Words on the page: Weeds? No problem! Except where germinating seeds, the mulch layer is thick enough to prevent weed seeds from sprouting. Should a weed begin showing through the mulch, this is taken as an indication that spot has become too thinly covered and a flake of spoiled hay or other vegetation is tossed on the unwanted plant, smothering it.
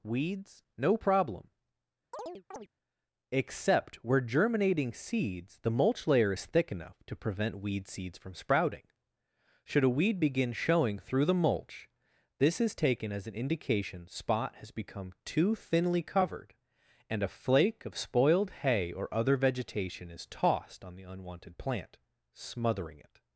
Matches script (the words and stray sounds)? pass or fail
fail